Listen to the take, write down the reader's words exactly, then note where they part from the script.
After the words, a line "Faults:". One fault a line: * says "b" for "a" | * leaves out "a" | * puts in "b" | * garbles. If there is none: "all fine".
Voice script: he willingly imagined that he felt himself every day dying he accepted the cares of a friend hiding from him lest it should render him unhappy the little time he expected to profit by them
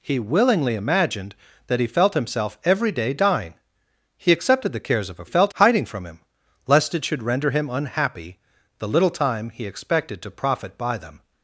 he willingly imagined that he felt himself every day dying he accepted the cares of a felt hiding from him lest it should render him unhappy the little time he expected to profit by them
Faults:
* says "felt" for "friend"